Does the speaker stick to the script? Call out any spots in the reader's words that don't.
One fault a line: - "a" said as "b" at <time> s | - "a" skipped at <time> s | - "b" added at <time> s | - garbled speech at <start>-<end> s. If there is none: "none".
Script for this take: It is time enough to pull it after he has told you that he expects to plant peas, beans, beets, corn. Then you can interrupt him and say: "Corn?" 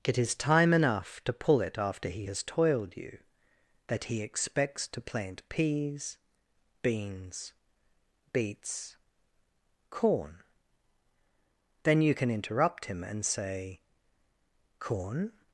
- "told" said as "toiled" at 2.4 s